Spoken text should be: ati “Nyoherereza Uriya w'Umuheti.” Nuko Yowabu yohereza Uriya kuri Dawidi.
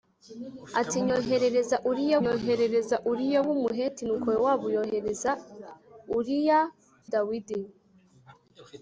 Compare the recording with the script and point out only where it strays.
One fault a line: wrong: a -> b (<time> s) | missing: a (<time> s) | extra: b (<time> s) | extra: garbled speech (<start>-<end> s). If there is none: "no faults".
extra: nyoherereza Uriya (2.2 s)
missing: kuri (6.6 s)